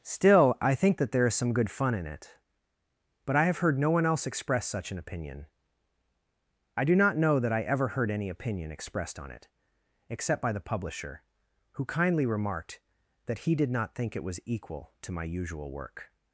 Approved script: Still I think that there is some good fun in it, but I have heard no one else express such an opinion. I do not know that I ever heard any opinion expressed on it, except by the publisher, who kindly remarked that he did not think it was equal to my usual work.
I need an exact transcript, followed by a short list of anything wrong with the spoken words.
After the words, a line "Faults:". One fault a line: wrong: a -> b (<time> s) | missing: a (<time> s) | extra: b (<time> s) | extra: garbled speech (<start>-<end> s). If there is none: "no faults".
Still I think that there is some good fun in it, but I have heard no one else express such an opinion. I do not know that I ever heard any opinion expressed on it, except by the publisher, who kindly remarked that he did not think it was equal to my usual work.
Faults:
no faults